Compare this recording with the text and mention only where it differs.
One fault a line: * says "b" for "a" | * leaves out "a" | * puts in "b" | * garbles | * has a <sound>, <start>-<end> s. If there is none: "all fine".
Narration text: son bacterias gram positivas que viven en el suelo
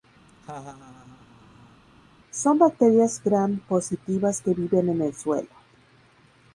* has a laugh, 0.3-1.8 s